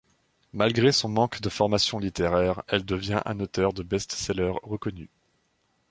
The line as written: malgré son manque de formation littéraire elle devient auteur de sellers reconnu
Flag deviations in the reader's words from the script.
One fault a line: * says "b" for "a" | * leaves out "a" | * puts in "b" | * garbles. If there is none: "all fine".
* puts in "un"
* puts in "best"